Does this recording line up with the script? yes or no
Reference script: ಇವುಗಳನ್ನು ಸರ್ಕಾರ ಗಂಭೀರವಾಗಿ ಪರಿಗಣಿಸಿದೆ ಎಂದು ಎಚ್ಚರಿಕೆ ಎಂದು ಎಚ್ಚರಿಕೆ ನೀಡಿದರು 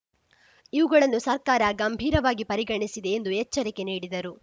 no